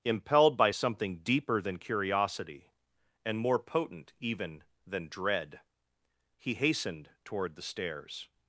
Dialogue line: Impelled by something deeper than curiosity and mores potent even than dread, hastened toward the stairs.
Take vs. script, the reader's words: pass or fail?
fail